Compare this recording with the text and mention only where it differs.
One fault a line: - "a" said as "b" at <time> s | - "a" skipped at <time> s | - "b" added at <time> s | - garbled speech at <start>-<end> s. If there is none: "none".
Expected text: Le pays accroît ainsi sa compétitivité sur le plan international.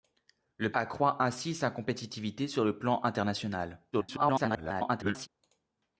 - "pays" skipped at 0.7 s
- garbled speech at 3.9-5.3 s